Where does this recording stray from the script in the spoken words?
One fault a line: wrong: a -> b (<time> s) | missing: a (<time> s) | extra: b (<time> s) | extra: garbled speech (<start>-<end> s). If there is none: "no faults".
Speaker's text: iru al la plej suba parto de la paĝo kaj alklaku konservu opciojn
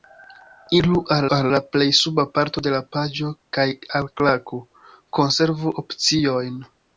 extra: al (1.4 s)